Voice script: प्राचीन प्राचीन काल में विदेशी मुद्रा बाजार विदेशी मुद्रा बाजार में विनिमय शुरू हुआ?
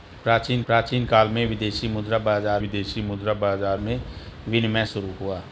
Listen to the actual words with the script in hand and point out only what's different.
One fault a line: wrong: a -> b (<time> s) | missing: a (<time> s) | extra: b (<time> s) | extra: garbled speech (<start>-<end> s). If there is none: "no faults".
no faults